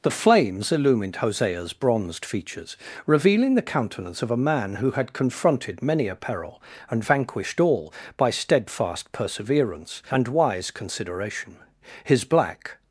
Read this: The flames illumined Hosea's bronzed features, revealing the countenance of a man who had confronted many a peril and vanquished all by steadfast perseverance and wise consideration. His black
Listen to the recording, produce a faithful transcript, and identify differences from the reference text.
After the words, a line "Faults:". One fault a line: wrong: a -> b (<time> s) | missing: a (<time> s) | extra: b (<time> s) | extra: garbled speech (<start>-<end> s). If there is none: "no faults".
The flames illumined Hosea's bronzed features, revealing the countenance of a man who had confronted many a peril and vanquished all by steadfast perseverance and wise consideration. His black
Faults:
no faults